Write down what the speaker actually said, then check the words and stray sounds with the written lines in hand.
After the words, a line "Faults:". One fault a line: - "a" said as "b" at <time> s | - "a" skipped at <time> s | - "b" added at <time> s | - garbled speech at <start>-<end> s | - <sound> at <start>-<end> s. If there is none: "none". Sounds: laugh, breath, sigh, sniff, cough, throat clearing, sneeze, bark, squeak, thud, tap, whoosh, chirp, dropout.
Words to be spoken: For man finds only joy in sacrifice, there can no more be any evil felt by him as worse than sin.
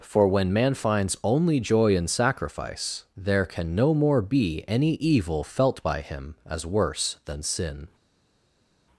For when man finds only joy in sacrifice, there can no more be any evil felt by him as worse than sin.
Faults:
- "when" added at 0.3 s